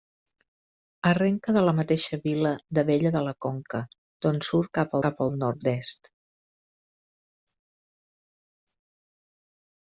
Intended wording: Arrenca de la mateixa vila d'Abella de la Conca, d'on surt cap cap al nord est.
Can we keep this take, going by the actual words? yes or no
yes